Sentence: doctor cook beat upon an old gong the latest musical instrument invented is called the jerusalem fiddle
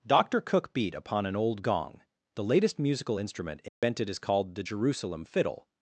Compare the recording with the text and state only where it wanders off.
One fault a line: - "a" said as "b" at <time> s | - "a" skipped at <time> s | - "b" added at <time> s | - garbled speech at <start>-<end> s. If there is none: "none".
none